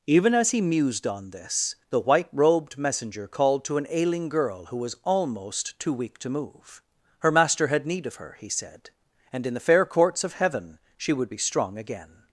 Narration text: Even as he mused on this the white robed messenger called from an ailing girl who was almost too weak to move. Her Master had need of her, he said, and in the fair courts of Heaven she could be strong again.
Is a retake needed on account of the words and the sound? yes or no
yes